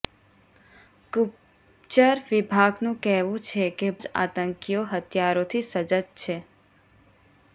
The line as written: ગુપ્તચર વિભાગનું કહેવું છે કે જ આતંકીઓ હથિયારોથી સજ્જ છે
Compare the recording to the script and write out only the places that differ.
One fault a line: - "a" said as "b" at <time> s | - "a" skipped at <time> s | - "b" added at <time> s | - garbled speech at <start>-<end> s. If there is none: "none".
none